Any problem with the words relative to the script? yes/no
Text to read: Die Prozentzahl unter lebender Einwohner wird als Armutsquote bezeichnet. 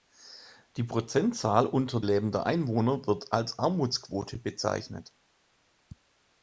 no